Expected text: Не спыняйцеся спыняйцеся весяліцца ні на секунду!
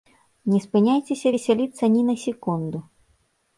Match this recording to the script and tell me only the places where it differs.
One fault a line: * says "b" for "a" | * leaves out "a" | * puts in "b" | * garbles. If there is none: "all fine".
* leaves out "спыняйцеся"